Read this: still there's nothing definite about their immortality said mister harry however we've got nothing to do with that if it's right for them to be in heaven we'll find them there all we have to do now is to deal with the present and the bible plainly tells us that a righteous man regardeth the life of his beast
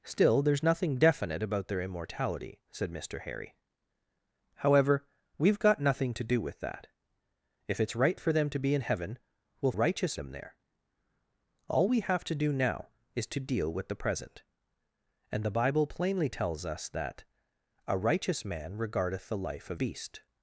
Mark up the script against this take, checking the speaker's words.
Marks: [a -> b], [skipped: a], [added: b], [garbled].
still there's nothing definite about their immortality said mister harry however we've got nothing to do with that if it's right for them to be in heaven we'll [find -> righteous] them there all we have to do now is to deal with the present and the bible plainly tells us that a righteous man regardeth the life of [skipped: his] beast